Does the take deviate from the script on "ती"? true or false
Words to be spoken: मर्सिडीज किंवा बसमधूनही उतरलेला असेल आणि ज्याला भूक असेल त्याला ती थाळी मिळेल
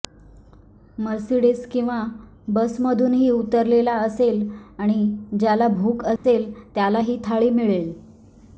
true